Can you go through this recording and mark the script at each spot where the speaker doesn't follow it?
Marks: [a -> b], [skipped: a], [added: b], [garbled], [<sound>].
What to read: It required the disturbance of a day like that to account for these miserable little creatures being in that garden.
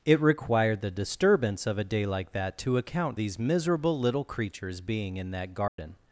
It required the disturbance of a day like that to account [skipped: for] these miserable little creatures being in that garden. [dropout]